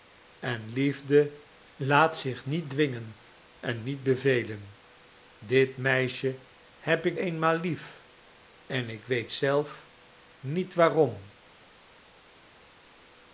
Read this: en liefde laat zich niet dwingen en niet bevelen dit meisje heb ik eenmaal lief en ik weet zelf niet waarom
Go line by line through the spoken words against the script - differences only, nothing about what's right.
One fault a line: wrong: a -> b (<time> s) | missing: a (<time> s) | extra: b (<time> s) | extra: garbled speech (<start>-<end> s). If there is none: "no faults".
no faults